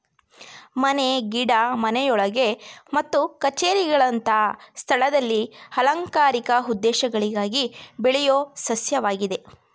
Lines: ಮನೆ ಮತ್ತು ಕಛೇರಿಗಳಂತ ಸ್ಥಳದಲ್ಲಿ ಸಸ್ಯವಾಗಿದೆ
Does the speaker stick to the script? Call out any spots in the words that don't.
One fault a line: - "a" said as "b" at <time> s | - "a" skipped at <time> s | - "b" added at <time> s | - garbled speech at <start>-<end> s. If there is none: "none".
- "ಗಿಡ ಮನೆಯೊಳಗೆ" added at 1.3 s
- "ಅಲಂಕಾರಿಕ ಉದ್ದೇಶಗಳಿಗಾಗಿ ಬೆಳೆಯೋ" added at 5.8 s